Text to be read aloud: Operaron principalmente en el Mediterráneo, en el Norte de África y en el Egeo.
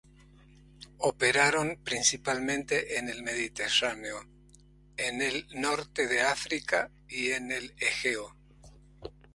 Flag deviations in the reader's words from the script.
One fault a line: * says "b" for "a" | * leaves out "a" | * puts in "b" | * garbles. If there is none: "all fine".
all fine